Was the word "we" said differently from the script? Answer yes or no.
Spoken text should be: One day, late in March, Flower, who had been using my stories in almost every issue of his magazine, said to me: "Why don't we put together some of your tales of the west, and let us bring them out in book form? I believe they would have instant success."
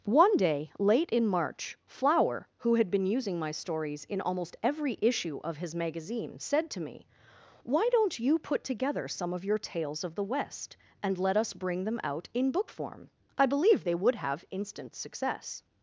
yes